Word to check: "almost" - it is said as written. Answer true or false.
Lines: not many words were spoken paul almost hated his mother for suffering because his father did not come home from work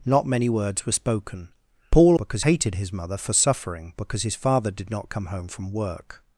false